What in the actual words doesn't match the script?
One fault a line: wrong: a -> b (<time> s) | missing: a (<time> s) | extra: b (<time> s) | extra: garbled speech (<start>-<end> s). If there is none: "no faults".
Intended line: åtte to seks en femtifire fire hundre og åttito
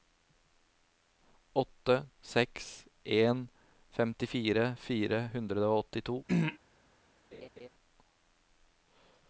missing: to (2.0 s)